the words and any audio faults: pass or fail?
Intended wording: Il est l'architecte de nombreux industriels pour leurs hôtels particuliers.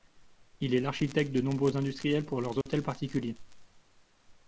fail